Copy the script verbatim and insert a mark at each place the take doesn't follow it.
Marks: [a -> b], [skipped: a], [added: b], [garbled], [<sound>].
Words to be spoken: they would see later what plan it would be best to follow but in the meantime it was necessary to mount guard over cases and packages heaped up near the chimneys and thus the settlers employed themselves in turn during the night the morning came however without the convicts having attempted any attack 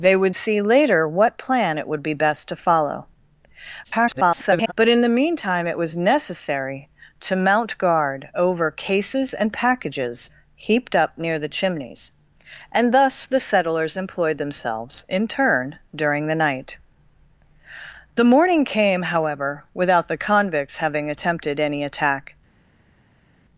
they would see later what plan it would be best to follow [garbled] but in the meantime it was necessary to mount guard over cases and packages heaped up near the chimneys and thus the settlers employed themselves in turn during the night the morning came however without the convicts having attempted any attack